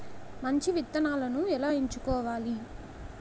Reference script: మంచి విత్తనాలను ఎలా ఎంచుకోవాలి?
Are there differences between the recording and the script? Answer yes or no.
no